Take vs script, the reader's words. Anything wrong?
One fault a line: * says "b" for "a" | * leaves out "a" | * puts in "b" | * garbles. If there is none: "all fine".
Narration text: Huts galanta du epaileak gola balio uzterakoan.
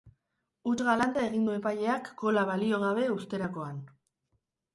* puts in "egin"
* puts in "gabe"